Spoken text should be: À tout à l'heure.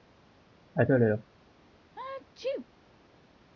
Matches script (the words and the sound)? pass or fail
fail